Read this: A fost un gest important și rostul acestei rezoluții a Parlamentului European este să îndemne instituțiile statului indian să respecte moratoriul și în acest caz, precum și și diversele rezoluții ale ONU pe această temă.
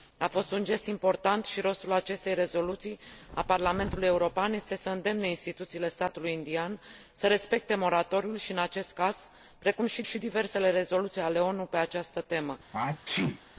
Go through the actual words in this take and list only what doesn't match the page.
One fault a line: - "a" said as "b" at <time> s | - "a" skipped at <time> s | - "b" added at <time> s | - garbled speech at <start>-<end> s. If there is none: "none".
none